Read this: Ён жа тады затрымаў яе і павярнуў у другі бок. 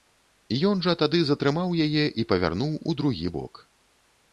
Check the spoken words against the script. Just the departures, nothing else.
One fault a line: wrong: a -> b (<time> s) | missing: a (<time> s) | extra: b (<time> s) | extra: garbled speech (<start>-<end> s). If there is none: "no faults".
no faults